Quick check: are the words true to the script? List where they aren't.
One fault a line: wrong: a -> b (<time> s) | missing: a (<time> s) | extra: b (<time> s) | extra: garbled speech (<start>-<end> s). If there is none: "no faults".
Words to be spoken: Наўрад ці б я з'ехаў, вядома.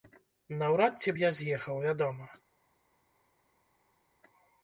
no faults